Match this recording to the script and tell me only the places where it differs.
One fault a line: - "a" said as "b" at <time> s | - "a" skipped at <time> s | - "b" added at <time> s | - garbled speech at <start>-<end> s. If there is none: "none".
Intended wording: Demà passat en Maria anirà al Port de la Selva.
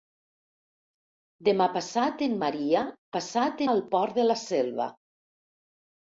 - "anirà" said as "passat" at 3.1 s